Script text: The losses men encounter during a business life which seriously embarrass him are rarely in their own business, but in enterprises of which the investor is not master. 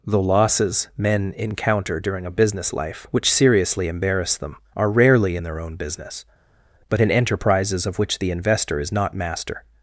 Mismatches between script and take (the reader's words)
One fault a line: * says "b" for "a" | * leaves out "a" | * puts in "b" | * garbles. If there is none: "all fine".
* says "them" for "him"